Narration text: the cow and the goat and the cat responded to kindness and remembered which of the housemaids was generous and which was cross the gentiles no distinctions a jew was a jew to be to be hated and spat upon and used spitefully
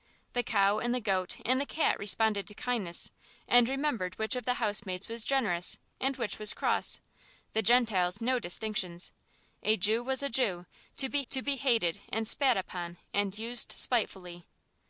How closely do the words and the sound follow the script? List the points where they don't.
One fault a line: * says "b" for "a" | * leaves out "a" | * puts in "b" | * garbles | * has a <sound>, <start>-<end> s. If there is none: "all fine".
all fine